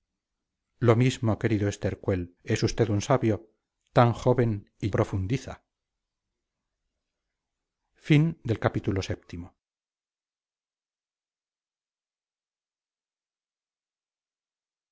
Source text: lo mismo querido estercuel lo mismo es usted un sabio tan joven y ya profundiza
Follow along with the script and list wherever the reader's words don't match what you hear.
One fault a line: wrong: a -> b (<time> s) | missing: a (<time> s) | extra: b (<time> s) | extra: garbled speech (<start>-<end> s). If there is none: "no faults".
missing: lo mismo (2.4 s)
missing: ya (4.9 s)